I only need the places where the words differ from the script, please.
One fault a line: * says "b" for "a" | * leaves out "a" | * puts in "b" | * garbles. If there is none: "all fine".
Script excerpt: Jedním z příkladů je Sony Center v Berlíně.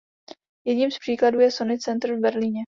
all fine